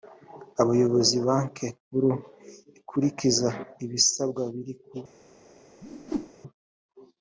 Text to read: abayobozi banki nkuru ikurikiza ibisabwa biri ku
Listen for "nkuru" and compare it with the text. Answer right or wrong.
right